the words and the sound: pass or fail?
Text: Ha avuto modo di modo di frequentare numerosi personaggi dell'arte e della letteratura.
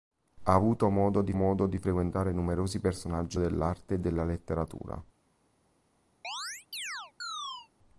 fail